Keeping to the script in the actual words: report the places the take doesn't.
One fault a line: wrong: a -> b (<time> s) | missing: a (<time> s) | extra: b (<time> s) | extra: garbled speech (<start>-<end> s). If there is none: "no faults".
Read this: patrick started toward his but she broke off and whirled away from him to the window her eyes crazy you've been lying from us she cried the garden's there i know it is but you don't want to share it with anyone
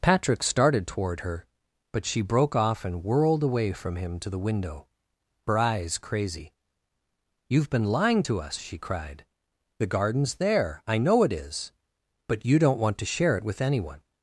wrong: his -> her (1.2 s)
wrong: from -> to (8.2 s)